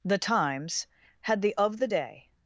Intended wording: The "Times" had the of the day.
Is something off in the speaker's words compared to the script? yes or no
no